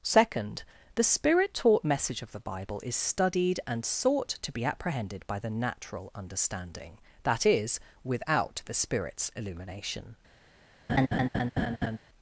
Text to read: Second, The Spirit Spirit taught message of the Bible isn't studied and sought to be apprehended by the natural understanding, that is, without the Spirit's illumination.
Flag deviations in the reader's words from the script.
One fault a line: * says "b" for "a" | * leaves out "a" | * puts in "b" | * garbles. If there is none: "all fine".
* leaves out "Spirit"
* says "is" for "isn't"